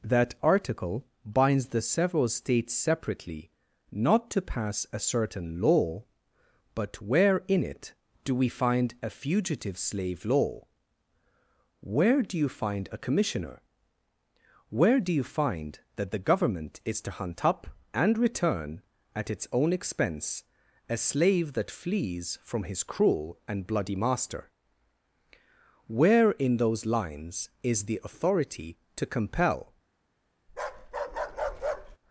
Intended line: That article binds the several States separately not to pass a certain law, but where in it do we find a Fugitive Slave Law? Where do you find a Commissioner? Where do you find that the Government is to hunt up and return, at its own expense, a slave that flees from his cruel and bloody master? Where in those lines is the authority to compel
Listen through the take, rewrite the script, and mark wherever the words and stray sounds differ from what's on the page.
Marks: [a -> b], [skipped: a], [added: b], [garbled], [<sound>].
That article binds the several States separately not to pass a certain law, but where in it do we find a Fugitive Slave Law? Where do you find a Commissioner? Where do you find that the Government is to hunt up and return, at its own expense, a slave that flees from his cruel and bloody master? Where in those lines is the authority to compel [bark]